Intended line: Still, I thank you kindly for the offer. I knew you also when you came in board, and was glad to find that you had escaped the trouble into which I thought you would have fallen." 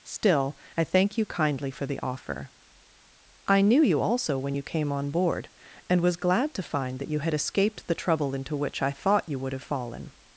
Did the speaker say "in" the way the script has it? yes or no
no